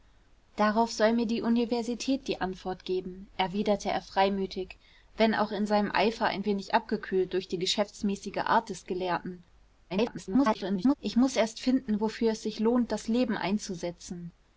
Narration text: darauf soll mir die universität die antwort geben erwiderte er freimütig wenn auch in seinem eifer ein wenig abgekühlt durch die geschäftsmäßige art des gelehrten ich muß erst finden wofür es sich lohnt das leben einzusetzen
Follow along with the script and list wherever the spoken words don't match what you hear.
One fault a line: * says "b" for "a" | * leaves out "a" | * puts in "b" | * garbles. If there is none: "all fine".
* garbles